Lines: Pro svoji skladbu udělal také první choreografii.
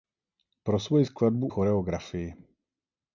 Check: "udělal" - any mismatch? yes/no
yes